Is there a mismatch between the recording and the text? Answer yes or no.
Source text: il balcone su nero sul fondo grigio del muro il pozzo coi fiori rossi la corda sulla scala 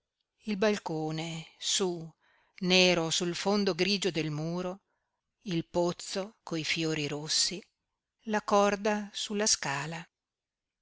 no